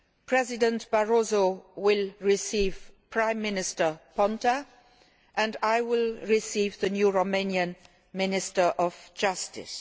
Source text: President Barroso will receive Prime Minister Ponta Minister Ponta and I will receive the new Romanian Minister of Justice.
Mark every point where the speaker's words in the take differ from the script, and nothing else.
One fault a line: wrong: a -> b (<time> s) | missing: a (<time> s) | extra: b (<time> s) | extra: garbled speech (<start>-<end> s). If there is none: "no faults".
missing: Minister Ponta (4.6 s)